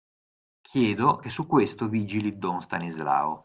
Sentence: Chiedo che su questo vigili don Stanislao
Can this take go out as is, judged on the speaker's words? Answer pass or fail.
pass